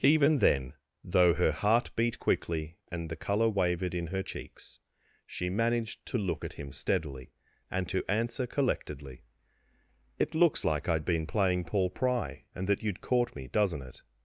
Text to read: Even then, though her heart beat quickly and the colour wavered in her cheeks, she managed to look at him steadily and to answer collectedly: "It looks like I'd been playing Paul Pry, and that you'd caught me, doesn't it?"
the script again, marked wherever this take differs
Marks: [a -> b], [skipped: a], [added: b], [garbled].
Even then, though her heart beat quickly and the colour wavered in her cheeks, she managed to look at him steadily and to answer collectedly: "It looks like I'd been playing Paul Pry, and that you'd caught me, doesn't it?"